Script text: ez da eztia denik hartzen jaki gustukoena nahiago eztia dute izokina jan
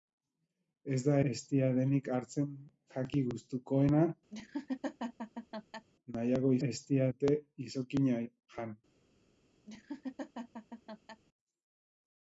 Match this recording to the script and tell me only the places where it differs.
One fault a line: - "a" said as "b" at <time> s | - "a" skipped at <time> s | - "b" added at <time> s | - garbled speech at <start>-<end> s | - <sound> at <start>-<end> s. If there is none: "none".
- laugh at 4.3-5.9 s
- laugh at 9.7-11.2 s